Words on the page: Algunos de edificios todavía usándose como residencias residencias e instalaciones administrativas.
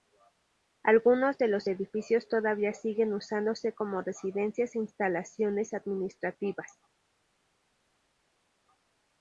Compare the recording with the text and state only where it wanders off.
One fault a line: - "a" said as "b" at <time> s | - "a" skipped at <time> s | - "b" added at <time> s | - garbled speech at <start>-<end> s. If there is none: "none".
- "los" added at 1.5 s
- "siguen" added at 2.7 s
- "residencias" skipped at 4.7 s